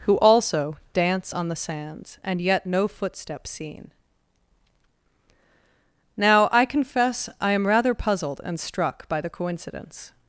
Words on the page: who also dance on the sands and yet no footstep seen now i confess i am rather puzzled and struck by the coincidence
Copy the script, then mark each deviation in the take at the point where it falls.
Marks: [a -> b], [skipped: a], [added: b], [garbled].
who also dance on the sands and yet no footstep seen now i confess i am rather puzzled and struck by the coincidence